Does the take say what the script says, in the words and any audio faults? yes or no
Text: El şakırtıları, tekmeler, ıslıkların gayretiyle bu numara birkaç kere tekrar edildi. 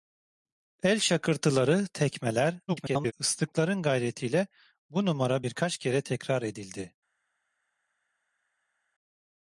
no